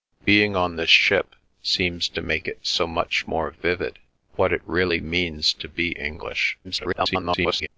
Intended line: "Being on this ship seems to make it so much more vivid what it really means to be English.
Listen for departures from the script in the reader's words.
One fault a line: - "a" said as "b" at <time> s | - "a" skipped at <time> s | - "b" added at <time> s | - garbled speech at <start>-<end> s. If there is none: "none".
- garbled speech at 6.6-7.7 s